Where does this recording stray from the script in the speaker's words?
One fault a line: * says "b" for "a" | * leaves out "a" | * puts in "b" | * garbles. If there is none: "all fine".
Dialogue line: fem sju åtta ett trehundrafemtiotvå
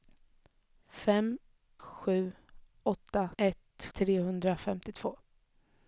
all fine